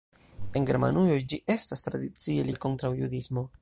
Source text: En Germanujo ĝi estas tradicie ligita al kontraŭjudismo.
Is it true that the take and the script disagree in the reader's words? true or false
true